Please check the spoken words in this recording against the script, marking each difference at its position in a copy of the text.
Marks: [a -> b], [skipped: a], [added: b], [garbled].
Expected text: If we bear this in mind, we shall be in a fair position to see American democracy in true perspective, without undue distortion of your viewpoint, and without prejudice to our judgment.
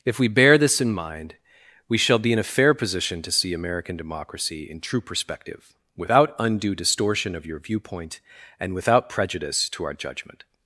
If we bear this in mind, we shall be in a fair position to see American democracy in true perspective, without undue distortion of your viewpoint, and without prejudice to our judgment.